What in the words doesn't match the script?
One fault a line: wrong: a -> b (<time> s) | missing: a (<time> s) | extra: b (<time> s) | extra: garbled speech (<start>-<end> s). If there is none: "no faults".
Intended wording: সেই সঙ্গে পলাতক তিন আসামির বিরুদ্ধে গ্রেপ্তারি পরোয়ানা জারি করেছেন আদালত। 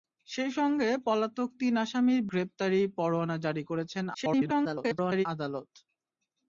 missing: বিরুদ্ধে (2.2 s)
extra: garbled speech (4.1-5.3 s)